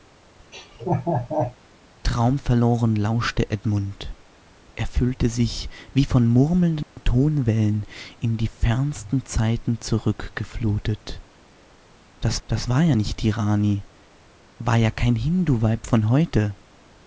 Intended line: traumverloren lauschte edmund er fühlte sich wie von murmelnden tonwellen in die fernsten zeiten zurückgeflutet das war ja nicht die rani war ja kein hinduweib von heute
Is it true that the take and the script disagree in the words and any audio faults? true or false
true